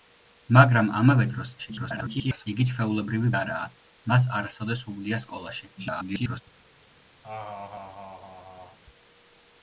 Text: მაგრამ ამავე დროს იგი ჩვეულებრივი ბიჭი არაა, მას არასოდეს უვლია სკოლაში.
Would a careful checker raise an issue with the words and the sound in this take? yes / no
yes